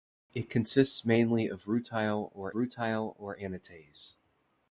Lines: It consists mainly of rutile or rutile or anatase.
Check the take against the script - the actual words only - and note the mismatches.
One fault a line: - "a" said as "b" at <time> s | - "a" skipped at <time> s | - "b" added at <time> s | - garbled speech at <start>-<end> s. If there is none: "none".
none